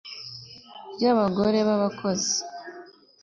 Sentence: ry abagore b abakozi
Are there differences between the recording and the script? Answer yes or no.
no